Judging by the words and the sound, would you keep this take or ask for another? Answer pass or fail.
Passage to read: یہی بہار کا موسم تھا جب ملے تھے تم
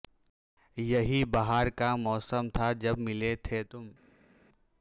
pass